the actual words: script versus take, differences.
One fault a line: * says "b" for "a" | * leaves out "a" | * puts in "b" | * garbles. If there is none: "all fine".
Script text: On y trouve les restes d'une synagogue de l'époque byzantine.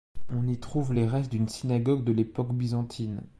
all fine